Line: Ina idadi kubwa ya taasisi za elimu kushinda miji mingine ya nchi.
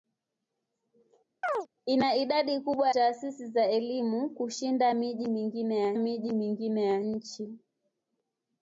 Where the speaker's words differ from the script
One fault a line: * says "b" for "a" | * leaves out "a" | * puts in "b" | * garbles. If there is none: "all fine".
* leaves out "ya"
* puts in "miji mingine ya"